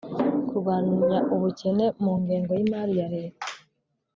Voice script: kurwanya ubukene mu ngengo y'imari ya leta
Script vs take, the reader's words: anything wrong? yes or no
no